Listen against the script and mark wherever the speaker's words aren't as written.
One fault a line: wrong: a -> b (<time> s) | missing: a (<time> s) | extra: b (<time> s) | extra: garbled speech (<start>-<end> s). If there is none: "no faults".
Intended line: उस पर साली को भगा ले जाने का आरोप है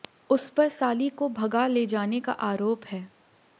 no faults